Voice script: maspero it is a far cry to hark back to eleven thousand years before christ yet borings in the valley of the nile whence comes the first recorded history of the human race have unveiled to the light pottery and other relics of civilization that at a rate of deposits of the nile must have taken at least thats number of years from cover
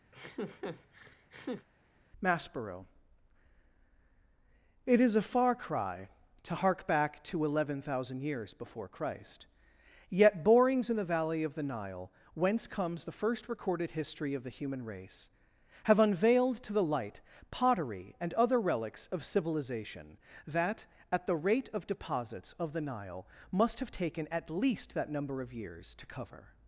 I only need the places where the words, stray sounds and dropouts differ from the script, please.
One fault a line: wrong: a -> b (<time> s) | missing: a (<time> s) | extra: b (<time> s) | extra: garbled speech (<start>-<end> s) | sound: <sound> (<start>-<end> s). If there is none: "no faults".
sound: laugh (0.1-1.7 s)
wrong: a -> the (21.3 s)
wrong: thats -> that (24.9 s)
wrong: from -> to (26.0 s)